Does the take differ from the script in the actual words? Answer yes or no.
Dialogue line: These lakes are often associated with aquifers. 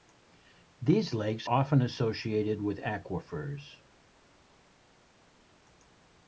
yes